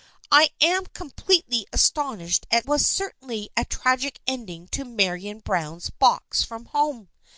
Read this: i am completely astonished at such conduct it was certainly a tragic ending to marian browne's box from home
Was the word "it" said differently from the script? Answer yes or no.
yes